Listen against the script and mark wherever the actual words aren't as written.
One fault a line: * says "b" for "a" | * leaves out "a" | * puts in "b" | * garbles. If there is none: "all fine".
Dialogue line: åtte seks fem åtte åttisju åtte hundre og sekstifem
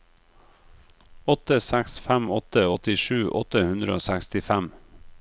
all fine